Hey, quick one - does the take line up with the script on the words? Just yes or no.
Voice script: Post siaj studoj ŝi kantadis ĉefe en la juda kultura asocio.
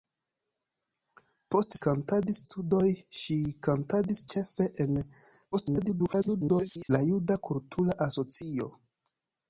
no